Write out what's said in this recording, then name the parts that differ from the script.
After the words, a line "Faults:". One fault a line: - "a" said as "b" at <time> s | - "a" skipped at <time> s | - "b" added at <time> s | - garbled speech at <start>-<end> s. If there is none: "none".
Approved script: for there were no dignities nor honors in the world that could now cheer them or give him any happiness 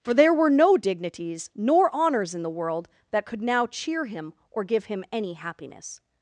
for there were no dignities nor honors in the world that could now cheer him or give him any happiness
Faults:
- "them" said as "him" at 4.1 s